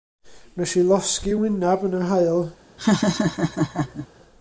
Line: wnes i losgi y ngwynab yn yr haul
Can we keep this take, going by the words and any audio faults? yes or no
no